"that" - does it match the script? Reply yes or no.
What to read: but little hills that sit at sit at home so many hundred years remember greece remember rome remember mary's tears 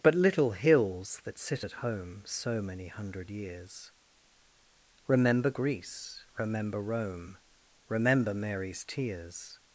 yes